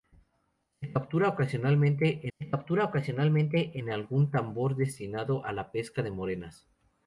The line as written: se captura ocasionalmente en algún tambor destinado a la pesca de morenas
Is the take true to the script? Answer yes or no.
no